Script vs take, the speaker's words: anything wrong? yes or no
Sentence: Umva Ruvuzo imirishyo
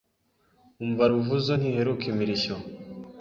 yes